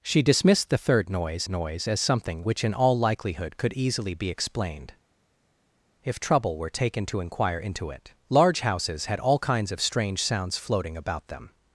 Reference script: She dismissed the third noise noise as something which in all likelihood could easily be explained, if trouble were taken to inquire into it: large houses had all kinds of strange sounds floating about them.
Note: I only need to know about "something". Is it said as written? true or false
true